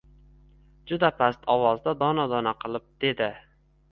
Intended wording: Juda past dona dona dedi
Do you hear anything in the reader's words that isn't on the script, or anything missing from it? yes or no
yes